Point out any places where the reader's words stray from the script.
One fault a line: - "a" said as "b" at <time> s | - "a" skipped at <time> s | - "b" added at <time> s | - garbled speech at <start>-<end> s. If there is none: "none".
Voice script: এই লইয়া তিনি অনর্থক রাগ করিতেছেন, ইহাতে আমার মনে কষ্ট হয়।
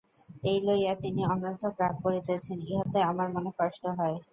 none